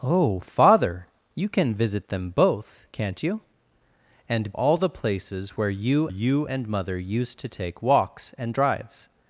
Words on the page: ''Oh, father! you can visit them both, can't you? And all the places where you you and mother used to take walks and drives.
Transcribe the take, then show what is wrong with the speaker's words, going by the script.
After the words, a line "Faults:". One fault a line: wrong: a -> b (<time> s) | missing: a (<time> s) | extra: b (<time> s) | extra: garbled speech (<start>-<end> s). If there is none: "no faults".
''Oh, father! you can visit them both, can't you? And all the places where you you and mother used to take walks and drives.
Faults:
no faults